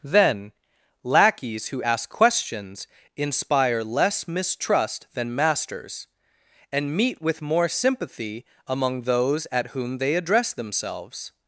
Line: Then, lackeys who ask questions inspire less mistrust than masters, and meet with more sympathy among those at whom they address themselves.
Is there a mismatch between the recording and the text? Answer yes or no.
no